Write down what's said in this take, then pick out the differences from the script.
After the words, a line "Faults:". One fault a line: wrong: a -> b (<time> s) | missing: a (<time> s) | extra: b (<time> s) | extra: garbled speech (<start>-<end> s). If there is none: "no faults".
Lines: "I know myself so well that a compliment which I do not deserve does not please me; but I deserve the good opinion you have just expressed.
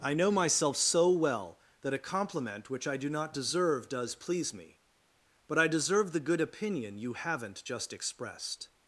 "I know myself so well that a compliment which I do not deserve does please me; but I deserve the good opinion you haven't just expressed.
Faults:
missing: not (4.2 s)
wrong: have -> haven't (7.1 s)